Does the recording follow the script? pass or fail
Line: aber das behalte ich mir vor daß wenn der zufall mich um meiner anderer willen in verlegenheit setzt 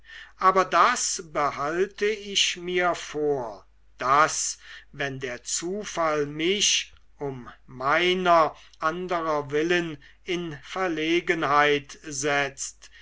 pass